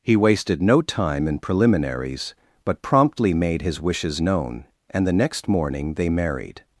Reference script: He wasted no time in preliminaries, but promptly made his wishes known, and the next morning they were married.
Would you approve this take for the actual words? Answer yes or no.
no